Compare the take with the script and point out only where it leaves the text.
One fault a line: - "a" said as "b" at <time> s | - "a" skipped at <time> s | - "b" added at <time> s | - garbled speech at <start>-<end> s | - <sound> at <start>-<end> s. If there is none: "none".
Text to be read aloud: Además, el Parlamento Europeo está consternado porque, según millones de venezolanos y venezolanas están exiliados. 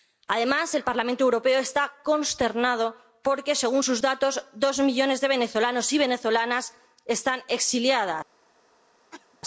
- "sus datos dos" added at 3.8 s
- cough at 9.1-9.4 s